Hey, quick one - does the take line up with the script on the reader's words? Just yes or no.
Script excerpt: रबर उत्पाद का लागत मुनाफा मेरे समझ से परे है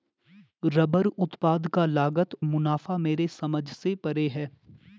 yes